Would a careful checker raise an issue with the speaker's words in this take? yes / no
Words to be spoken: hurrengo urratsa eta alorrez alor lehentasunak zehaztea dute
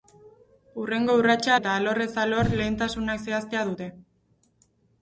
no